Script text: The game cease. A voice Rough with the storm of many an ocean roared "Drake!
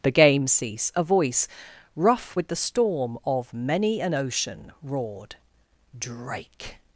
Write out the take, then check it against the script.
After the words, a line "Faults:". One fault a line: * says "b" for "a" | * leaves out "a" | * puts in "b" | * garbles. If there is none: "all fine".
The game cease. A voice Rough with the storm of many an ocean roared "Drake!
Faults:
all fine